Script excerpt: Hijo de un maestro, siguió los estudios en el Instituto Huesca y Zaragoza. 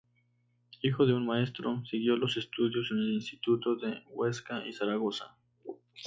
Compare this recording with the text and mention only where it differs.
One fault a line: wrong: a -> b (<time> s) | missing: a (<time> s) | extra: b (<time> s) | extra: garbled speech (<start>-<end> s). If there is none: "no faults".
extra: de (3.8 s)